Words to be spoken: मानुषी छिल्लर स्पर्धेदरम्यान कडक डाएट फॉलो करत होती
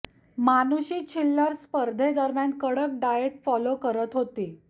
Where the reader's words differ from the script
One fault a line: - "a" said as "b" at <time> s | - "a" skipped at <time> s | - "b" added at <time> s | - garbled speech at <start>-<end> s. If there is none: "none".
none